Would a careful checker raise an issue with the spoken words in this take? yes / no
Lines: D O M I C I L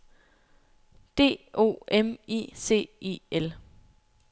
no